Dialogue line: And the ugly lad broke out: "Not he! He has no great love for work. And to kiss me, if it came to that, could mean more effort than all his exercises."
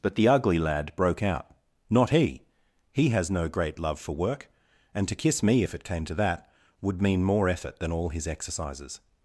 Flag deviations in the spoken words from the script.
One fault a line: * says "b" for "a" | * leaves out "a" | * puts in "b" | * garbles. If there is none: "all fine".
* says "But" for "And"
* says "would" for "could"